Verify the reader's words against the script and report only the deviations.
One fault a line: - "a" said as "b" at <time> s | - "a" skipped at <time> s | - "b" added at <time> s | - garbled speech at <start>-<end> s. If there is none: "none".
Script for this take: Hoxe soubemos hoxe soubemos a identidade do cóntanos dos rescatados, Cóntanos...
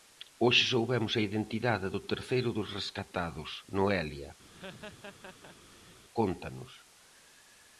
- "hoxe soubemos" skipped at 1.1 s
- "cóntanos" said as "terceiro" at 2.1 s
- "Noelia" added at 3.8 s